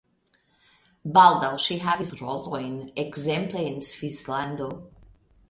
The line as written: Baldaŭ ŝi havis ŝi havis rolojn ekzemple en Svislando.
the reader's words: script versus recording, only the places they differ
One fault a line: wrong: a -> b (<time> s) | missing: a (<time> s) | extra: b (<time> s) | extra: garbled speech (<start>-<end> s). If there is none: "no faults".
missing: ŝi havis (2.1 s)